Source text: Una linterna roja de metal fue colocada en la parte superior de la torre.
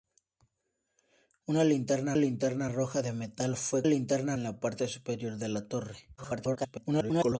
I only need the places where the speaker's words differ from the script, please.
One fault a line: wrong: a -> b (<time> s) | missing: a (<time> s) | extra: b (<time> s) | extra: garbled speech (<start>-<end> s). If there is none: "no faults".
extra: linterna (2.1 s)
wrong: colocada -> linterna (3.8 s)
extra: garbled speech (6.2-7.4 s)